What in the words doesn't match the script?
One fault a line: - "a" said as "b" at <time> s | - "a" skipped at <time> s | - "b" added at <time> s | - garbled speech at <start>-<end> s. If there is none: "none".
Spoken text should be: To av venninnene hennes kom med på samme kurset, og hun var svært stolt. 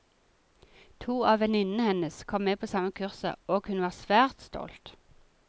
none